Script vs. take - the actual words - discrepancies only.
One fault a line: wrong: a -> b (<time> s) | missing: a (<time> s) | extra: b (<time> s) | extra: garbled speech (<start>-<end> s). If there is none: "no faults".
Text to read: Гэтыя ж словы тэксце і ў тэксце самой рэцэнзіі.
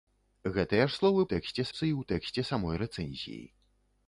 no faults